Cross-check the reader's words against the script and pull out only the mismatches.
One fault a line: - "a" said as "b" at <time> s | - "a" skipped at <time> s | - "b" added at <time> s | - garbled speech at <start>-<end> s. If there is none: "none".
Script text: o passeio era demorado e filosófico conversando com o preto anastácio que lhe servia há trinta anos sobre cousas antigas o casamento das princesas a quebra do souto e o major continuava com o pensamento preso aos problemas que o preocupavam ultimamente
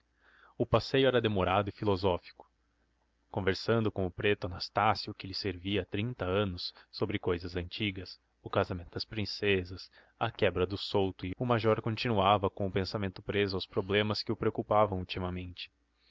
none